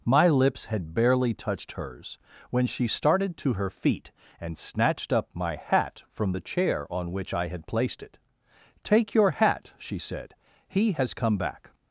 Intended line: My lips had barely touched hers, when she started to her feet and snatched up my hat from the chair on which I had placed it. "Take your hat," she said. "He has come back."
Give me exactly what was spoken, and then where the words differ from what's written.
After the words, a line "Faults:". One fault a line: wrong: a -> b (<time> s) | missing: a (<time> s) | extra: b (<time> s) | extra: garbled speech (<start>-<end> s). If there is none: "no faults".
My lips had barely touched hers, when she started to her feet and snatched up my hat from the chair on which I had placed it. "Take your hat," she said. "He has come back."
Faults:
no faults